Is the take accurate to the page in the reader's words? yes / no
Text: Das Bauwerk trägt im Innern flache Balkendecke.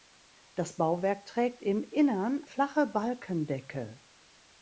yes